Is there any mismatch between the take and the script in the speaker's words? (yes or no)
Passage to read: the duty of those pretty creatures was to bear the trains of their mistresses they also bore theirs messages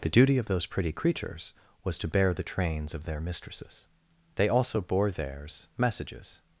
no